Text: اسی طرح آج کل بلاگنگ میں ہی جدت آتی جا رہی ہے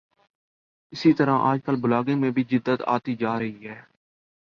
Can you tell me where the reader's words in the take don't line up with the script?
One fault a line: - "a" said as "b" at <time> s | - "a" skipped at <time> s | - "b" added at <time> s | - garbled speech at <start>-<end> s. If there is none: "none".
- "ہی" said as "بھی" at 2.3 s